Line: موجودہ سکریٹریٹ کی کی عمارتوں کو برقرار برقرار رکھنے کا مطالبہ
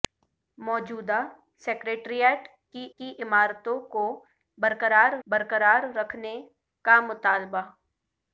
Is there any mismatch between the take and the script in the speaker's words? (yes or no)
no